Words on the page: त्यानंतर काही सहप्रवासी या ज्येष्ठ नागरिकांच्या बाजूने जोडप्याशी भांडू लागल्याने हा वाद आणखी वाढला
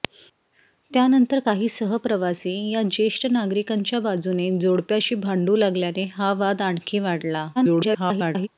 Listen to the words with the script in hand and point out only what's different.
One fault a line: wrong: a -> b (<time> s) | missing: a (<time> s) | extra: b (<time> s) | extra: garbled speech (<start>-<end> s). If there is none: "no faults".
extra: garbled speech (7.6-8.5 s)